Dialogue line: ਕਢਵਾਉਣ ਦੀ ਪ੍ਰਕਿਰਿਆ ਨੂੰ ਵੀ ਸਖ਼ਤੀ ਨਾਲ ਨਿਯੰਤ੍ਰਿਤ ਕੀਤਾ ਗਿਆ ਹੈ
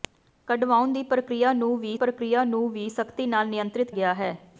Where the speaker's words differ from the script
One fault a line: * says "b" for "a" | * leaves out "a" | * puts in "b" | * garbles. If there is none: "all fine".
* puts in "ਪ੍ਰਕਿਰਿਆ ਨੂੰ ਵੀ"
* leaves out "ਕੀਤਾ"